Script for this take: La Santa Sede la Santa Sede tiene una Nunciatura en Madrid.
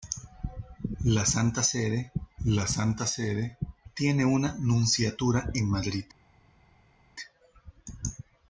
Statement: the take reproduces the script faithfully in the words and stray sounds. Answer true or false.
true